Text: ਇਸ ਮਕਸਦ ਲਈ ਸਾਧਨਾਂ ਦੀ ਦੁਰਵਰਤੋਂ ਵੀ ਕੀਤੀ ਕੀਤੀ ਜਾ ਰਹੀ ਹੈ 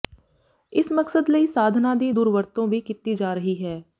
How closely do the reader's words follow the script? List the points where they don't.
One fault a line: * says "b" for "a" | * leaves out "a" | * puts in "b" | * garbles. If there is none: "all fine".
* leaves out "ਕੀਤੀ"